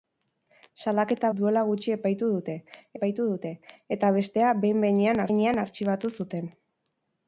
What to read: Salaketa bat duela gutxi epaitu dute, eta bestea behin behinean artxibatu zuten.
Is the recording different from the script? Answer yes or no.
yes